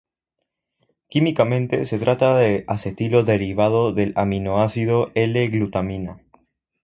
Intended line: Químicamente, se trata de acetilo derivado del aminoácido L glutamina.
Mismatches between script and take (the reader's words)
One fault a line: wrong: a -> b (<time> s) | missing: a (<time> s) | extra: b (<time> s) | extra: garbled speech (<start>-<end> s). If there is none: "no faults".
no faults